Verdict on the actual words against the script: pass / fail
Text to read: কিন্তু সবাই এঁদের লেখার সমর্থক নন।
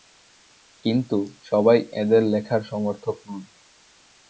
pass